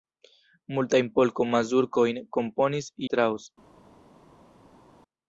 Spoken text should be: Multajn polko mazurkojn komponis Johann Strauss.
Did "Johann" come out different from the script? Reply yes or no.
yes